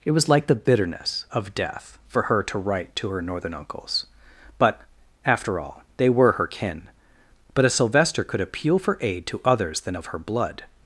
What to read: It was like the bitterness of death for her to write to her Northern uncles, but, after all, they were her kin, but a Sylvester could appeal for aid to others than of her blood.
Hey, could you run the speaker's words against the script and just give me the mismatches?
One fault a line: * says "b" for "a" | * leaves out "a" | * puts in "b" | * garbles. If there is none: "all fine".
all fine